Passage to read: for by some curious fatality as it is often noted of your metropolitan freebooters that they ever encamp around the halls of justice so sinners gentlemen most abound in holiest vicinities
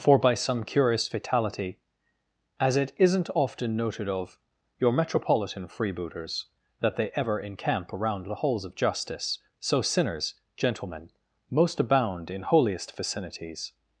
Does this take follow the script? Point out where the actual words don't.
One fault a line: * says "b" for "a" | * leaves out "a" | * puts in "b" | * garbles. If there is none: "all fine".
* says "isn't" for "is"